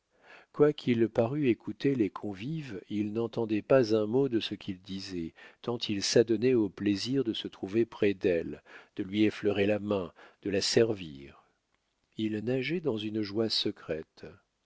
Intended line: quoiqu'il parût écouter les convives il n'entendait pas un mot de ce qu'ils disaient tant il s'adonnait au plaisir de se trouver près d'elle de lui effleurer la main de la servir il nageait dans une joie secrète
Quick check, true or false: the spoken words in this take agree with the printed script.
true